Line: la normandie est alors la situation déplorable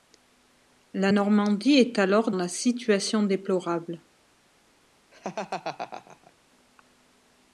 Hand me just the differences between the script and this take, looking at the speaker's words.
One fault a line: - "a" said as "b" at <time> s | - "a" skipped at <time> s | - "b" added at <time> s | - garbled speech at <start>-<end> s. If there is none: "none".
none